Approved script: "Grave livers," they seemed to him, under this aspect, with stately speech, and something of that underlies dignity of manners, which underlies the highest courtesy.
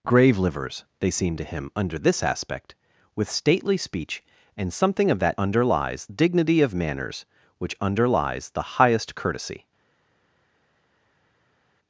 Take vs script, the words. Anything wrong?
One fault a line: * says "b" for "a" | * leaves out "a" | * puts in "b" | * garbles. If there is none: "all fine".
all fine